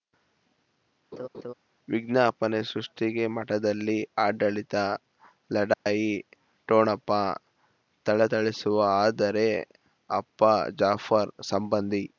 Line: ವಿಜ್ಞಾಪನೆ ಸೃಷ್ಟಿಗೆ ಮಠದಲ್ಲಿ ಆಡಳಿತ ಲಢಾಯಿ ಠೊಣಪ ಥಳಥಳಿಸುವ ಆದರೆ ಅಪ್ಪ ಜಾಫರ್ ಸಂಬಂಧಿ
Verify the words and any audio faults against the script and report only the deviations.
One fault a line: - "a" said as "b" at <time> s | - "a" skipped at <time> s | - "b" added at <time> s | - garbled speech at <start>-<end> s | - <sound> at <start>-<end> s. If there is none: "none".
- laugh at 1.1-1.5 s
- dropout at 5.7-5.9 s